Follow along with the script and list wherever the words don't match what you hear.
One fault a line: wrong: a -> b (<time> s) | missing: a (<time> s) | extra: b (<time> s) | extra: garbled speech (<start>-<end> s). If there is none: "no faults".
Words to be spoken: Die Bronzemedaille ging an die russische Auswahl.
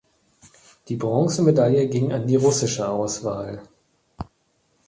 no faults